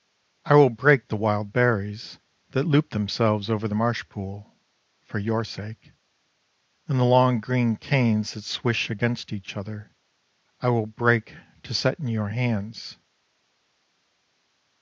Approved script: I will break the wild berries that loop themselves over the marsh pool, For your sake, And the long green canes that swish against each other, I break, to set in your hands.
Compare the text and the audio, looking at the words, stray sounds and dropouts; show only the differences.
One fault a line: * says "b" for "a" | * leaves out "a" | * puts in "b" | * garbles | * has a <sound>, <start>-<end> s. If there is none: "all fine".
* puts in "will"